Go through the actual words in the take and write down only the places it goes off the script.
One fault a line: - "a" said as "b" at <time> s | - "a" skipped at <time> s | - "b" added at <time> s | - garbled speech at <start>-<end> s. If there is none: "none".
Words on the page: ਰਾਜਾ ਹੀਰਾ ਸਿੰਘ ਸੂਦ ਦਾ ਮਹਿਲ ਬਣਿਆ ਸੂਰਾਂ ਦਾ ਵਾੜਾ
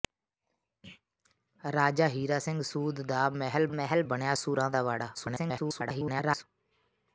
- "ਮਹਿਲ" added at 3.7 s
- garbled speech at 5.1-6.4 s